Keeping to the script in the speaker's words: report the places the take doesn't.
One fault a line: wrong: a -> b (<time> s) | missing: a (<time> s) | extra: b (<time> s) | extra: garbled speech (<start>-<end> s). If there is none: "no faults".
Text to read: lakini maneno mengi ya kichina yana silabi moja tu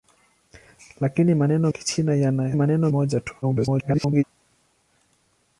missing: mengi ya (1.7 s)
wrong: silabi -> maneno (2.5 s)
extra: garbled speech (3.4-4.2 s)